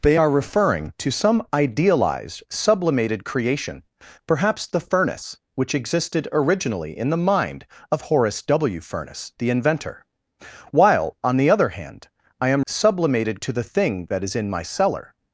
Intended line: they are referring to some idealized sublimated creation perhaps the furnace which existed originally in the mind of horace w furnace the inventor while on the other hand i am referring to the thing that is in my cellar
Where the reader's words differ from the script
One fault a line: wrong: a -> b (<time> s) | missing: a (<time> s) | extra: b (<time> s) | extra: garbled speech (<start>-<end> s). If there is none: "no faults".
wrong: referring -> sublimated (12.6 s)